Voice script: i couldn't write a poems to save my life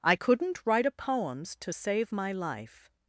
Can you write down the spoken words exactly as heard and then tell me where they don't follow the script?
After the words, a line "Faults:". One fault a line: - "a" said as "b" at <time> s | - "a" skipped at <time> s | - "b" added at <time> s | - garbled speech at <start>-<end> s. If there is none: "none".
i couldn't write a poems to save my life
Faults:
none